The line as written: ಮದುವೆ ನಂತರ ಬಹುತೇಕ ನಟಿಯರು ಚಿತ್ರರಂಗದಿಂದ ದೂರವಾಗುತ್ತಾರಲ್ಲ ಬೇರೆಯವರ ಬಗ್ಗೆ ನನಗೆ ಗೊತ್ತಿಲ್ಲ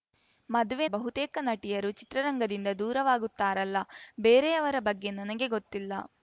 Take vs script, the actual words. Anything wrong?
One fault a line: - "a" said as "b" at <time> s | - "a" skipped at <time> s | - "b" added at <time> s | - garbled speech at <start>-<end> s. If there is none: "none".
- "ನಂತರ" skipped at 0.8 s